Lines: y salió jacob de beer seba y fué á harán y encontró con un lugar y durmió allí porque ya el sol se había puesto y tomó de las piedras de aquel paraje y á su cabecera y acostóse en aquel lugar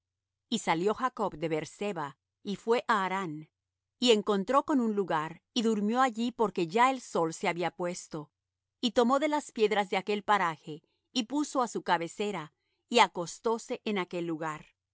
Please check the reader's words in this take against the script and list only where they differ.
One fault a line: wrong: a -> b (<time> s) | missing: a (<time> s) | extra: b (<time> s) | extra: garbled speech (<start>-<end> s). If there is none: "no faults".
extra: puso (11.2 s)